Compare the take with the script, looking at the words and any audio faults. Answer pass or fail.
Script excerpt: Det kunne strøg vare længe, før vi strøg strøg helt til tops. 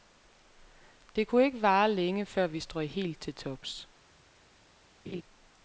fail